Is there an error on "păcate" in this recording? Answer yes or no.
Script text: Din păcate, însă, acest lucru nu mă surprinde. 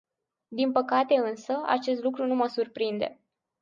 no